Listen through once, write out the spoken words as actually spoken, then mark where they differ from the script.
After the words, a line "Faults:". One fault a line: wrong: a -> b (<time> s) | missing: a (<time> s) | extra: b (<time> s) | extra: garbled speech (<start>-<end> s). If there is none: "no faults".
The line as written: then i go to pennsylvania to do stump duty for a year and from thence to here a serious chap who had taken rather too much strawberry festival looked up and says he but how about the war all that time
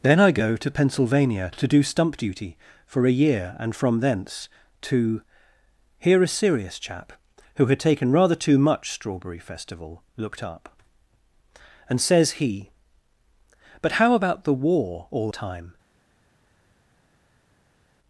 then i go to pennsylvania to do stump duty for a year and from thence to here a serious chap who had taken rather too much strawberry festival looked up and says he but how about the war all time
Faults:
missing: that (15.3 s)